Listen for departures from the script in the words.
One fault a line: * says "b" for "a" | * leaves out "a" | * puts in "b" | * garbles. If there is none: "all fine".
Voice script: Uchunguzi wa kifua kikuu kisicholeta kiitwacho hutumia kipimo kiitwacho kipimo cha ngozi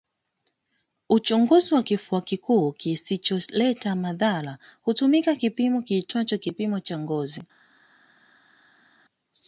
* says "madhara" for "kiitwacho"